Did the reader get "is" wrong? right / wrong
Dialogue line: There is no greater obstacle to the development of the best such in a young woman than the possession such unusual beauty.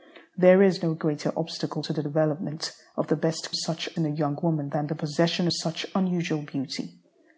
right